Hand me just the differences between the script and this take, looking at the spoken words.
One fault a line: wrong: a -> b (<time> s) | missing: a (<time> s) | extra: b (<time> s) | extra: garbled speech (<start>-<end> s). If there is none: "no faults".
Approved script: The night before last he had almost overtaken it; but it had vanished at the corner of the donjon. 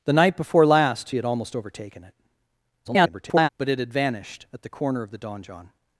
extra: garbled speech (2.8-3.5 s)